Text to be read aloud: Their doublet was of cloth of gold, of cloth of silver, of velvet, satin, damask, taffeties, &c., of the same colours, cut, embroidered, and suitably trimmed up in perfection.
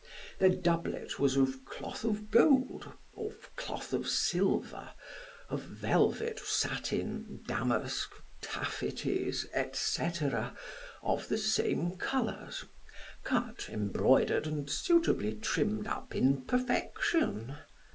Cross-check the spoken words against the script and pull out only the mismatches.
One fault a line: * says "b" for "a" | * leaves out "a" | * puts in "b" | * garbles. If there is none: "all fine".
all fine